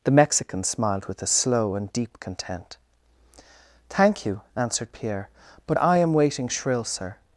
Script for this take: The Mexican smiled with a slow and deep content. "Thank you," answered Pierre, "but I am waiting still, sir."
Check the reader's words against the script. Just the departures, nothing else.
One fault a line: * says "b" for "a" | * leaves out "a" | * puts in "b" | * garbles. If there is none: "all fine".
* says "shrill" for "still"